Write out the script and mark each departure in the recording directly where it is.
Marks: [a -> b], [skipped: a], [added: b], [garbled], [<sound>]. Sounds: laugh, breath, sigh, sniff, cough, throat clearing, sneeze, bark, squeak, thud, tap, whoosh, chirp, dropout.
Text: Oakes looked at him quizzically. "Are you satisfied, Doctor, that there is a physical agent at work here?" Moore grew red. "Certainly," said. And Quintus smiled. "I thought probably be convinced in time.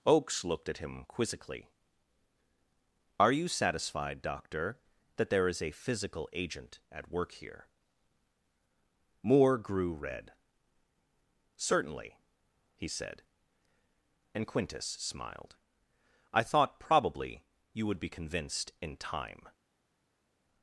Oakes looked at him quizzically. "Are you satisfied, Doctor, that there is a physical agent at work here?" Moore grew red. "Certainly," [added: he] said. And Quintus smiled. "I thought probably [added: you would] be convinced in time.